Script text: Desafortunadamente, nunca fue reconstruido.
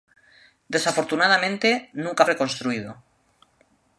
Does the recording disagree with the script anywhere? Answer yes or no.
yes